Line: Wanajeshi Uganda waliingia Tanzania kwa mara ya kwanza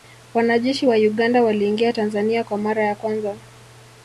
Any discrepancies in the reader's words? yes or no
yes